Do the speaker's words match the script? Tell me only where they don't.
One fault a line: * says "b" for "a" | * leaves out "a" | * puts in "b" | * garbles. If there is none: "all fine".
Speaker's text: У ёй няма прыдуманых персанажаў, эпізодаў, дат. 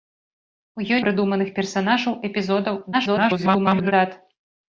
* leaves out "няма"
* garbles